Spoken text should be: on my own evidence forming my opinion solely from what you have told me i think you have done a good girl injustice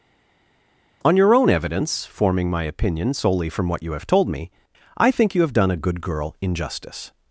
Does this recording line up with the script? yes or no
no